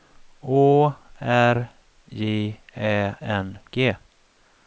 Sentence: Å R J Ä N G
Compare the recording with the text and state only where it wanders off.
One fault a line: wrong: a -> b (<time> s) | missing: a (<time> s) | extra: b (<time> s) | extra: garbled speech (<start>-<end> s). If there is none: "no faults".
no faults